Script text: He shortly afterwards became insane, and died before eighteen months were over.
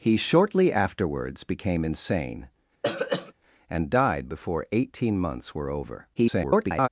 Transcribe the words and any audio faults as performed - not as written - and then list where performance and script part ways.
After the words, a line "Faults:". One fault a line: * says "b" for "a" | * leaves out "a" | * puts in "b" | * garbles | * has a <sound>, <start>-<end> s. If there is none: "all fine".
He shortly afterwards became insane, and died before eighteen months were over. [garbled]
Faults:
* has a throat clearing, 2.8-3.3 s
* garbles